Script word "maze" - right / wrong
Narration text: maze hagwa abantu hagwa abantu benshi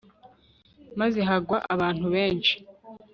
right